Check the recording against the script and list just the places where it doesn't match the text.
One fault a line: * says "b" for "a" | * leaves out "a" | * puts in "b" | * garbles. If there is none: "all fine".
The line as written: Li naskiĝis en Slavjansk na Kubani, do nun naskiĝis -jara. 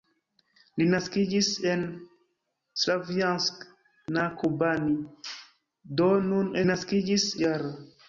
all fine